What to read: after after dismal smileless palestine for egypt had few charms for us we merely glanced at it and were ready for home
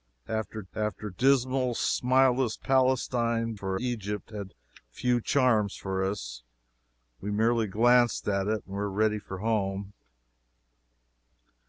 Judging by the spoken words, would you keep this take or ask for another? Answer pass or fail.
pass